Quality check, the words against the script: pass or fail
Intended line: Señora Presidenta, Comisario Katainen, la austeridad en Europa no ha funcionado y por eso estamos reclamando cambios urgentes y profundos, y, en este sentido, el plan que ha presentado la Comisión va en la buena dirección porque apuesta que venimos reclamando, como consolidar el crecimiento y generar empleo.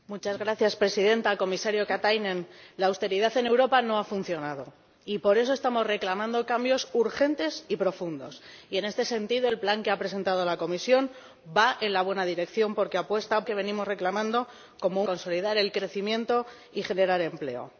pass